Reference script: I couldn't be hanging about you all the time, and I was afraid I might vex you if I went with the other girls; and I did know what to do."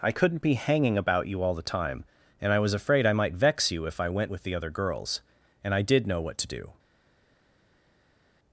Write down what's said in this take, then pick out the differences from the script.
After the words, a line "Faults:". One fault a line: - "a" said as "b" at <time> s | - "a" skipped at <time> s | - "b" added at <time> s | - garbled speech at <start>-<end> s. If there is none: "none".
I couldn't be hanging about you all the time, and I was afraid I might vex you if I went with the other girls; and I did know what to do."
Faults:
none